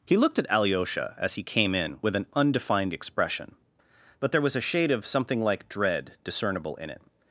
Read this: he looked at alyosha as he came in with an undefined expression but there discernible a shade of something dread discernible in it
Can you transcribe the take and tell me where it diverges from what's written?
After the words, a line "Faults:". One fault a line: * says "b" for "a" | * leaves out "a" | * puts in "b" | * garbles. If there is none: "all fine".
he looked at alyosha as he came in with an undefined expression but there was a shade of something like dread discernible in it
Faults:
* says "was" for "discernible"
* puts in "like"